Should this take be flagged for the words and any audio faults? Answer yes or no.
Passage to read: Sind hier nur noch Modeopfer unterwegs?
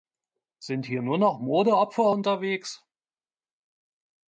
no